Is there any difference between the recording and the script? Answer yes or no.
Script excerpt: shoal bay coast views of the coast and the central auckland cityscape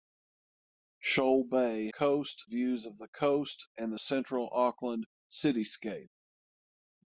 no